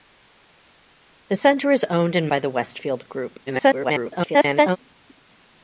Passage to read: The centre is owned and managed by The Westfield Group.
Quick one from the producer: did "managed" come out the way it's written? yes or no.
no